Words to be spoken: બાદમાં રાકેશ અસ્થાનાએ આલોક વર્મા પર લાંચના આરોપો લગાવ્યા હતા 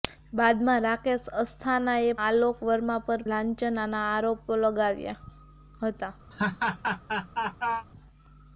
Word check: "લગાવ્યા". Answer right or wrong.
right